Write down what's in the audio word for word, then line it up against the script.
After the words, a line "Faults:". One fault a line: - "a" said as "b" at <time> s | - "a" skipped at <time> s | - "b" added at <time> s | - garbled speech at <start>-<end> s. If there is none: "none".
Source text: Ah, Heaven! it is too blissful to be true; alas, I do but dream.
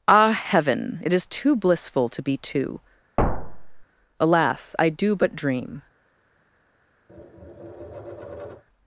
Ah, Heaven! it is too blissful to be two; alas, I do but dream.
Faults:
- "true" said as "two" at 2.4 s